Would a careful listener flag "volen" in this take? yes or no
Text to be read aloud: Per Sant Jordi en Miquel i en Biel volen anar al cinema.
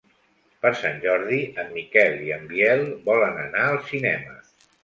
no